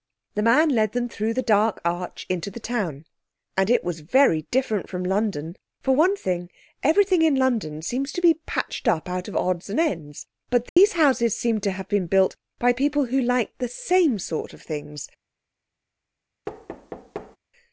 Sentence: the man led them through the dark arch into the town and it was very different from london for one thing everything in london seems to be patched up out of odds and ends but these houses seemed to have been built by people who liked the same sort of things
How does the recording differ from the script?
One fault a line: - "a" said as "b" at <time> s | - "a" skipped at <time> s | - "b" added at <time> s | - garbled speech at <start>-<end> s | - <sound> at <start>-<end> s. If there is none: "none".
- dropout at 10.7-10.8 s
- thud at 16.5-17.4 s